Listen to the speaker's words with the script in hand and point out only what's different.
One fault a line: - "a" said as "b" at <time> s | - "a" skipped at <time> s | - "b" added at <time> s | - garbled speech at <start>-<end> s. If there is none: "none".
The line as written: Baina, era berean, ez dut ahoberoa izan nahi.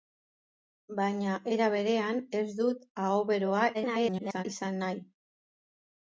- garbled speech at 3.7-4.4 s